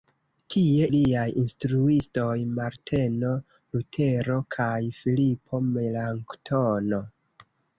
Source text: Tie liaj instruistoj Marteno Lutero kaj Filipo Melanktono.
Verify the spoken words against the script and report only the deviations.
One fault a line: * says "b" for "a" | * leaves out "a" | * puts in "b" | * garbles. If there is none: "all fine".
all fine